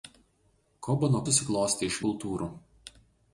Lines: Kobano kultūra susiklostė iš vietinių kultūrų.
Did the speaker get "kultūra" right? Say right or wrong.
wrong